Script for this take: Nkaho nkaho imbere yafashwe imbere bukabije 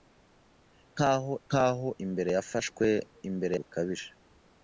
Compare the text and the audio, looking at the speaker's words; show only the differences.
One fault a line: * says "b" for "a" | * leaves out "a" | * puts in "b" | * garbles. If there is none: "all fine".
all fine